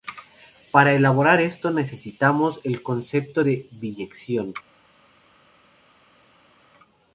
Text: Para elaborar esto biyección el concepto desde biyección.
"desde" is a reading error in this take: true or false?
true